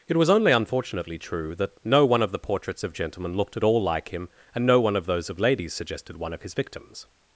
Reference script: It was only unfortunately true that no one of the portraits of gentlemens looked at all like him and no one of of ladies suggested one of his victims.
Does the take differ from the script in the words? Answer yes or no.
yes